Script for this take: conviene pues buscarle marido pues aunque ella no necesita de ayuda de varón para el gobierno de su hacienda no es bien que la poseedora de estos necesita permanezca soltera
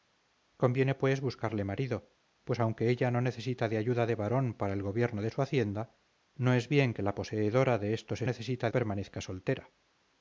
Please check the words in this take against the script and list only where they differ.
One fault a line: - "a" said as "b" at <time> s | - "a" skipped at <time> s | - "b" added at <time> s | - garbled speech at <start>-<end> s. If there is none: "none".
none